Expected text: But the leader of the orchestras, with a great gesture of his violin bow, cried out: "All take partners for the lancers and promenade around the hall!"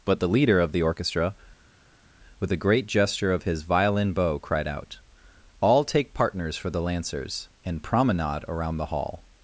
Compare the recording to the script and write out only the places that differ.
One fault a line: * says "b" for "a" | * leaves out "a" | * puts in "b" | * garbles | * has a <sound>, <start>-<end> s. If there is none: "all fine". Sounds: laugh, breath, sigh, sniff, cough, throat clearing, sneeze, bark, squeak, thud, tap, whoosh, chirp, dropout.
* says "orchestra" for "orchestras"